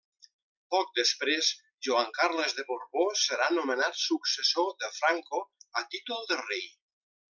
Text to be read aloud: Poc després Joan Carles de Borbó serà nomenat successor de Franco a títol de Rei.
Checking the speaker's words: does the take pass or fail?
pass